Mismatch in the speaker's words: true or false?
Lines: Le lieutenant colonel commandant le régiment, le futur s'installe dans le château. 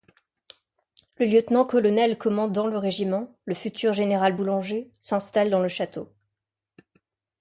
true